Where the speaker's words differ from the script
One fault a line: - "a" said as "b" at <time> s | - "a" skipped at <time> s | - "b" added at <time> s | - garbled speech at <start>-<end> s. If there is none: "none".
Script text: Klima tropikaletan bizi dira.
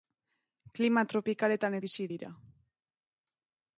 none